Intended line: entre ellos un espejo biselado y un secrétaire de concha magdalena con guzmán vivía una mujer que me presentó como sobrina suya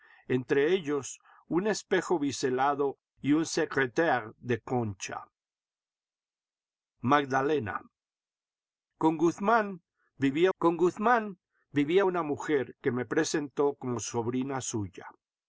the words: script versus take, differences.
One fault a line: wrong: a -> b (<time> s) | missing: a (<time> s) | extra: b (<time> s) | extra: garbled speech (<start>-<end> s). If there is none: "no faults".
extra: con guzmán vivía (10.6 s)